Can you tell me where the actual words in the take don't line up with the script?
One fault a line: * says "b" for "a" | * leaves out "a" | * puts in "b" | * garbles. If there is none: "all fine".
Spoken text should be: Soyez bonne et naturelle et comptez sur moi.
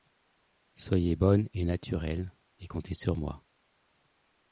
all fine